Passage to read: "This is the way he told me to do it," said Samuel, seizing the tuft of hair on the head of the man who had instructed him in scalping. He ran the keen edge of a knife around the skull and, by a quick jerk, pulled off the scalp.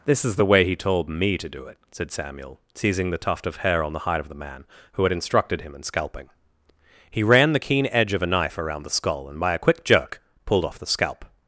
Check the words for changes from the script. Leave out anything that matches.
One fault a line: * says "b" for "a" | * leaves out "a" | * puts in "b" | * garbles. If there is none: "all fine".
* says "hide" for "head"